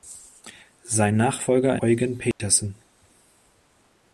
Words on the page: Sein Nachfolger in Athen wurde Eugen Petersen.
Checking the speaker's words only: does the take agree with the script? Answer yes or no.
no